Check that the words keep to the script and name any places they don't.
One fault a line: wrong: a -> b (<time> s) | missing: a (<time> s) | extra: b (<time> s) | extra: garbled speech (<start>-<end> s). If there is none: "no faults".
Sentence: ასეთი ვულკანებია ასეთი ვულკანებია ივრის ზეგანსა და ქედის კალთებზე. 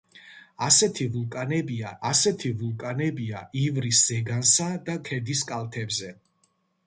no faults